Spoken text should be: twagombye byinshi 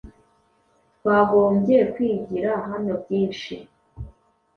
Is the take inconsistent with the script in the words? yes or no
yes